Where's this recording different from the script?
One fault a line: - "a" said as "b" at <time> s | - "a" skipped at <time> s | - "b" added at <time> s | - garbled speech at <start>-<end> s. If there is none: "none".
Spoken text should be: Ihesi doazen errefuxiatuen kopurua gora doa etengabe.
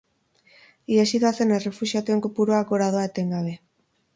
none